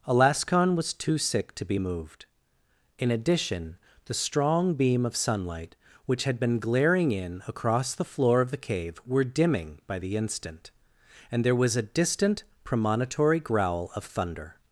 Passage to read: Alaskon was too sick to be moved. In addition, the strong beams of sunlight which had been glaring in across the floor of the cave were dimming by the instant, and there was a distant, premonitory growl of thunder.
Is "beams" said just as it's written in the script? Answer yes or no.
no